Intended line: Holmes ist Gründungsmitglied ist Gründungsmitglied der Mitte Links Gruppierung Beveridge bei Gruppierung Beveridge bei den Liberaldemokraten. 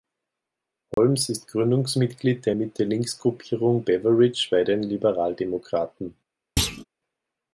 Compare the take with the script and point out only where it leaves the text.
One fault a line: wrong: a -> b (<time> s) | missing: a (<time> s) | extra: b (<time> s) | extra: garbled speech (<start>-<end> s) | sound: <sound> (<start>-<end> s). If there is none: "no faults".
sound: dropout (0.9-1.0 s)
missing: ist Gründungsmitglied (2.4 s)
missing: Gruppierung Beveridge bei (4.6 s)
sound: thud (6.6-6.8 s)